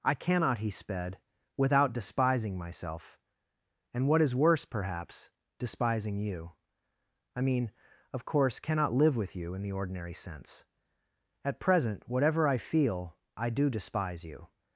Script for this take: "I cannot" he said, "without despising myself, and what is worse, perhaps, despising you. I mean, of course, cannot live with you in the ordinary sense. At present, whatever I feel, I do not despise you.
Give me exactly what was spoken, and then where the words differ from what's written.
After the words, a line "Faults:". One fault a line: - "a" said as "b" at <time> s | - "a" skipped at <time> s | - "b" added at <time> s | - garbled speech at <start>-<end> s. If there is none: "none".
"I cannot" he sped, "without despising myself, and what is worse, perhaps, despising you. I mean, of course, cannot live with you in the ordinary sense. At present, whatever I feel, I do despise you.
Faults:
- "said" said as "sped" at 0.7 s
- "not" skipped at 13.7 s